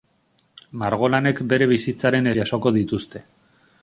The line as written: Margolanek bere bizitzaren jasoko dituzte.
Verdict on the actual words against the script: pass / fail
pass